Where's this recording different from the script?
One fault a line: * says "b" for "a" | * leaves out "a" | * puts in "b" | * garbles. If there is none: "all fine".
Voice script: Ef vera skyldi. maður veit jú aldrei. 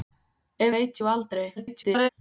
* leaves out "vera skyldi maður"
* garbles